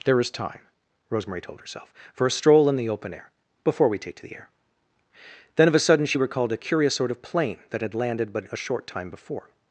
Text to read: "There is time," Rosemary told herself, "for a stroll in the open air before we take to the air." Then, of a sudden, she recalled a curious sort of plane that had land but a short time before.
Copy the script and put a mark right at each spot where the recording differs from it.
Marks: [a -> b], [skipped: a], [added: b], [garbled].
"There is time," Rosemary told herself, "for a stroll in the open air before we take to the air." Then, of a sudden, she recalled a curious sort of plane that had [land -> landed] but a short time before.